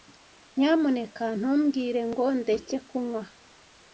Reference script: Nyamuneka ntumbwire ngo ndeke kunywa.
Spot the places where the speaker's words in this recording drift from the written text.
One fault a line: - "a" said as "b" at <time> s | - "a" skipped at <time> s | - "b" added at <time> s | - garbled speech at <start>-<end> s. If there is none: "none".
none